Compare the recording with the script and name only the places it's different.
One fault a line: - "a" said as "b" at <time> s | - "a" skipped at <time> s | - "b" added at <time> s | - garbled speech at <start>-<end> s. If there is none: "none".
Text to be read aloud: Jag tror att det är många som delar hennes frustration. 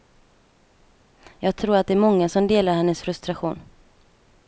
none